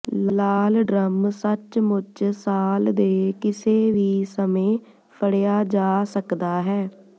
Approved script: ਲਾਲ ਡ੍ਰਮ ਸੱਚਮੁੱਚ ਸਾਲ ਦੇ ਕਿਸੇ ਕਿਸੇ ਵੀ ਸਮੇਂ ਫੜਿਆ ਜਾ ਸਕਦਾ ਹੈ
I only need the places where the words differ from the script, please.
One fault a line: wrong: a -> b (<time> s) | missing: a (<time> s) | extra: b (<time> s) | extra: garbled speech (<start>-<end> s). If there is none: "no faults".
missing: ਕਿਸੇ (3.9 s)